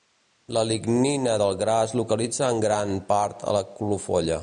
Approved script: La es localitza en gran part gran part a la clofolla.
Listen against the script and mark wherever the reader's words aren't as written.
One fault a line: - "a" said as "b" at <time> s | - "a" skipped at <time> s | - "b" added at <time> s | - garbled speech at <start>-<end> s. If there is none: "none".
- "lignina del gra" added at 0.7 s
- "gran part" skipped at 3.4 s